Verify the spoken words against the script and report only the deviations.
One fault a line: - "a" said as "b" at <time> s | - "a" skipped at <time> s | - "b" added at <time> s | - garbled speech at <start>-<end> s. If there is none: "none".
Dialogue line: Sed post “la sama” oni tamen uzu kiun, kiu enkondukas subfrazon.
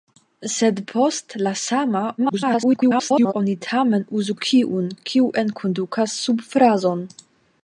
- garbled speech at 2.2-3.3 s